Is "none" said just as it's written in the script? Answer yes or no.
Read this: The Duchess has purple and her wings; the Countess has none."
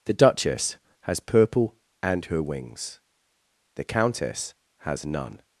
yes